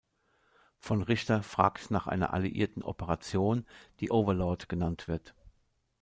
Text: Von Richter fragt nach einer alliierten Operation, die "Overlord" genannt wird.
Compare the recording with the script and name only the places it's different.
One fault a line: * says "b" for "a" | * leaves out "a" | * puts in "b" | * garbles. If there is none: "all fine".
all fine